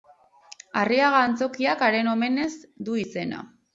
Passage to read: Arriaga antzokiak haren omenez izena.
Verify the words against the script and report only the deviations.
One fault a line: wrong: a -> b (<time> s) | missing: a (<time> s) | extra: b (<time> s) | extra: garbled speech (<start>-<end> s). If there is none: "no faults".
extra: du (2.9 s)